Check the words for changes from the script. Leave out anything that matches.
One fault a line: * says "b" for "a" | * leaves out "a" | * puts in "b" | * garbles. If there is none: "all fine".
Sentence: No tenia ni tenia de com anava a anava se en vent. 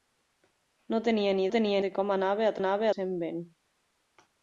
all fine